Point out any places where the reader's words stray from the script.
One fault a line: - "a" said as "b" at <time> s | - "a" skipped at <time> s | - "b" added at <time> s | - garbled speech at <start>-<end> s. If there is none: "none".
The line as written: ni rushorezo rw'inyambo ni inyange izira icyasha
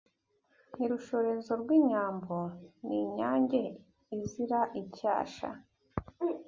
none